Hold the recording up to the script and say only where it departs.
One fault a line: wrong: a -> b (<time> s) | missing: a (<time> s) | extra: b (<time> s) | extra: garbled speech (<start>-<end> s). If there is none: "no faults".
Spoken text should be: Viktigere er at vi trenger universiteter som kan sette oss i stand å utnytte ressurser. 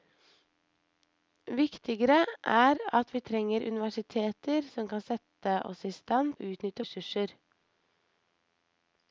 no faults